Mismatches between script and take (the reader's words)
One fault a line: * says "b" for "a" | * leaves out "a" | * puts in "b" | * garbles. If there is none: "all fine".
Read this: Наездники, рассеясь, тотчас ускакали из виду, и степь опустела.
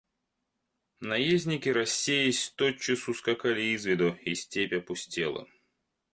all fine